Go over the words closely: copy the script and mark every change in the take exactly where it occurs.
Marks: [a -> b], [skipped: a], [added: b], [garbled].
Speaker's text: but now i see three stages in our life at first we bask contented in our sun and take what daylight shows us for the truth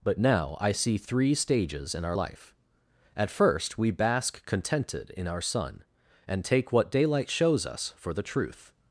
but now i see three stages in our life at first we bask contented in our sun and take what daylight shows us for the truth